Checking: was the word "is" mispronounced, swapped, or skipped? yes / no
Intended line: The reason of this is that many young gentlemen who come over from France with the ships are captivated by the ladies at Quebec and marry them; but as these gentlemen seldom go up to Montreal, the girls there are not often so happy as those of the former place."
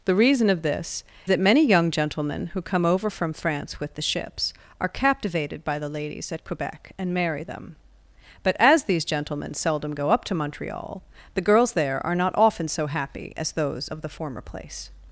yes